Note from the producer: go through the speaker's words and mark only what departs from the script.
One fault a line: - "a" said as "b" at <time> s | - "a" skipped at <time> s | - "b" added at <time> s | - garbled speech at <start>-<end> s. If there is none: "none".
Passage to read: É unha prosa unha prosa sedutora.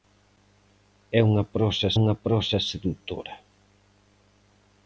none